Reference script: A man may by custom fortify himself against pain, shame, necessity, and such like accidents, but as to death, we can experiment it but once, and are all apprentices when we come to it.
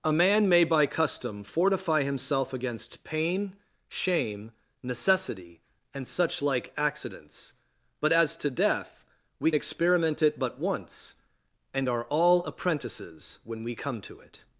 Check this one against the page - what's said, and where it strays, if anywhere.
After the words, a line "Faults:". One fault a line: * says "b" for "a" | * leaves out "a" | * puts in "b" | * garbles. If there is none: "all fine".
A man may by custom fortify himself against pain, shame, necessity, and such like accidents, but as to death, we experiment it but once, and are all apprentices when we come to it.
Faults:
* leaves out "can"